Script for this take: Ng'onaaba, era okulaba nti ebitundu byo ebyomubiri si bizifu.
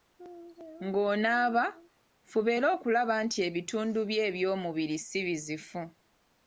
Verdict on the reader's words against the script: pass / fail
fail